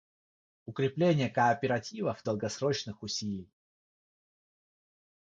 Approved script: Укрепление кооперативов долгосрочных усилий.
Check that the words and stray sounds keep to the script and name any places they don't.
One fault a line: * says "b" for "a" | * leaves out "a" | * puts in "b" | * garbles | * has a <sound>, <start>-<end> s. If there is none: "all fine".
all fine